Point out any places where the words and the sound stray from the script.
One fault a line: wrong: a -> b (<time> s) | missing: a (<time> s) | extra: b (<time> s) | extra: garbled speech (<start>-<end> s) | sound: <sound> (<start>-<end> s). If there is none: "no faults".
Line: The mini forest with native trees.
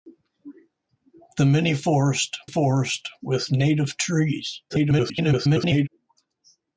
extra: forest (2.4 s)
extra: garbled speech (4.7-5.9 s)